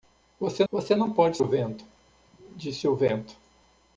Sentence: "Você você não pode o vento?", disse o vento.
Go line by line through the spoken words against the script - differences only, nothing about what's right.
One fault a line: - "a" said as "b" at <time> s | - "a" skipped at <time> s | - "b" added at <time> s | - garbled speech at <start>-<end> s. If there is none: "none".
none